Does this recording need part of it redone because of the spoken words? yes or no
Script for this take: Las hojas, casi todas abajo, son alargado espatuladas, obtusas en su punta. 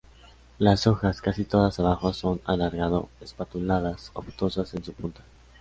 no